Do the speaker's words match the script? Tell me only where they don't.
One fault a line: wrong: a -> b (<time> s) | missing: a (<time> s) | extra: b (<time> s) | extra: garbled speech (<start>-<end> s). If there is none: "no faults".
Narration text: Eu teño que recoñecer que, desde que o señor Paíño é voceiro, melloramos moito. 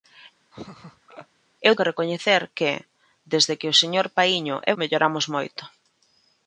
missing: teño (1.7 s)
missing: voceiro (4.7 s)